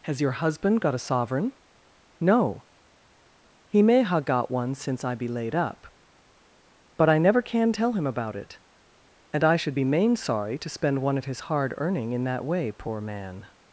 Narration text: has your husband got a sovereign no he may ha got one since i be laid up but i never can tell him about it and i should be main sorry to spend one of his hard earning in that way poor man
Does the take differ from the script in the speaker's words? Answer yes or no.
no